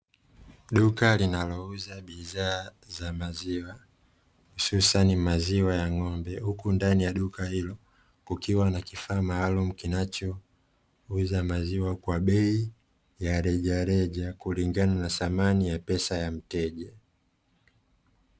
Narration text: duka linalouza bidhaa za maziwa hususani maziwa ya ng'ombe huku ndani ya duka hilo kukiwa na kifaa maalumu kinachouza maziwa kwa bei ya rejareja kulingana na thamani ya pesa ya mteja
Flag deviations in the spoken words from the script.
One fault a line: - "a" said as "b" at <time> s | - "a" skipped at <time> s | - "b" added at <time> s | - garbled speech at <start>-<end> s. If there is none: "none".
none